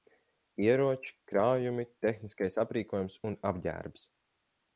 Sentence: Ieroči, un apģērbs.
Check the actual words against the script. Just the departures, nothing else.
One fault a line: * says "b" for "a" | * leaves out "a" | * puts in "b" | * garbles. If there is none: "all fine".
* puts in "krājumi tehniskais aprīkojums"